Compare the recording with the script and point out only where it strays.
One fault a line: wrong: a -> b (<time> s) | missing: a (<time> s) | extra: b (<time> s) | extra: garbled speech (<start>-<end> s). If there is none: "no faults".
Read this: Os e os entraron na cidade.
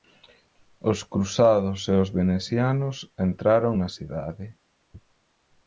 extra: cruzados (1.1 s)
extra: venecianos (2.2 s)